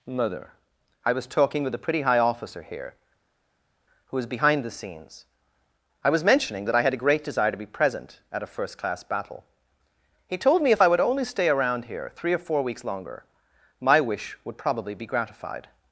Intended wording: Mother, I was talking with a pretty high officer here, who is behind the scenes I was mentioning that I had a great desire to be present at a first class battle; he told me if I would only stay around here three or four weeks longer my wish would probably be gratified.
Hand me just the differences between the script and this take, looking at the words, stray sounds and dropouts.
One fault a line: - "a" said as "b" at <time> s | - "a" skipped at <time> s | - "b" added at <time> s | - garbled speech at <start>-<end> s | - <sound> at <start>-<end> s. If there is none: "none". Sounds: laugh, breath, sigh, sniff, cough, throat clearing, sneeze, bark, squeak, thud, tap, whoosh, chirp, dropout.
none